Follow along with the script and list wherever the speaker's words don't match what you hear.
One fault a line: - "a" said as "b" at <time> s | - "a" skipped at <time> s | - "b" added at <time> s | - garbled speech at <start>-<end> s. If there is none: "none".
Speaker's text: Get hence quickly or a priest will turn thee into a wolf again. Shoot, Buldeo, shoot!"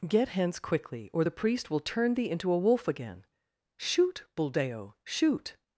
- "a" said as "the" at 1.2 s